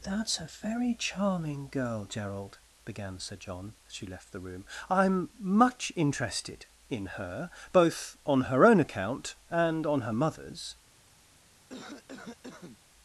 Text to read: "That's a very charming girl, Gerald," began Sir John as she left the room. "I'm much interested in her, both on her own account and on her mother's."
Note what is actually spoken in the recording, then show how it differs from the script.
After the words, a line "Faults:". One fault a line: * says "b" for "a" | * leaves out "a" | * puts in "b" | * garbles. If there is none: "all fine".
"That's a very charming girl, Gerald," began Sir John as she left the room. "I'm much interested in her, both on her own account and on her mother's."
Faults:
all fine